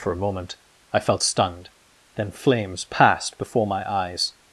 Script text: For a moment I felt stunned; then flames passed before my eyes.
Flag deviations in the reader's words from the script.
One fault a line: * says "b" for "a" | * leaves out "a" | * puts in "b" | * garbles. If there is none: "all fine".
all fine